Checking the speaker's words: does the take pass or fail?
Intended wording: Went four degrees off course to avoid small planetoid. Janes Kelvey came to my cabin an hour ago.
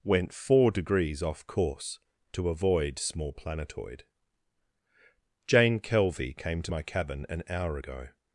fail